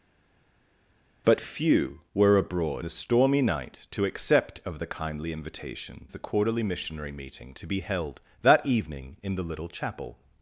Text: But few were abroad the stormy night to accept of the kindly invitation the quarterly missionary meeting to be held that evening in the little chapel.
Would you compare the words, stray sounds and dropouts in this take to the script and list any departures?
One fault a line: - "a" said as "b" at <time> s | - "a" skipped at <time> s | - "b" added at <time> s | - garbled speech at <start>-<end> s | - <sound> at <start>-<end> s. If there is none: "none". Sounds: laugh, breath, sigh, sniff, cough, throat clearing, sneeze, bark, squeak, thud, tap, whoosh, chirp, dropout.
none